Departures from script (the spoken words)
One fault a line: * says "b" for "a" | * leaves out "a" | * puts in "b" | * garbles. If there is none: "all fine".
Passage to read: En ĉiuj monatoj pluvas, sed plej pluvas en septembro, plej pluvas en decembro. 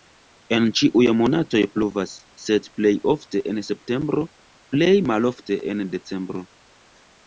* says "ofte" for "pluvas"
* says "malofte" for "pluvas"